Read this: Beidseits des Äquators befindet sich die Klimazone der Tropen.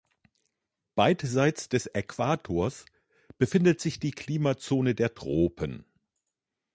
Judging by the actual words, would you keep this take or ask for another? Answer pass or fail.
pass